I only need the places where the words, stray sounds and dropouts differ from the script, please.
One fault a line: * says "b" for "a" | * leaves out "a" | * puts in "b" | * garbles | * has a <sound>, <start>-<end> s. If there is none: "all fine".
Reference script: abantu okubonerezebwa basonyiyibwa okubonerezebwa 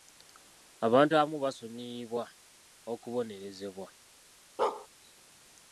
* says "abamu" for "okubonerezebwa"
* has a bark, 4.6-4.9 s